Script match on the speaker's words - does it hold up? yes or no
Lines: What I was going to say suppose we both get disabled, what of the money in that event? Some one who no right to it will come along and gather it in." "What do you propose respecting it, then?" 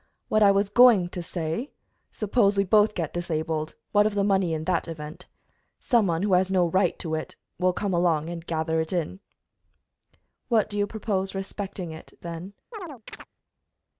no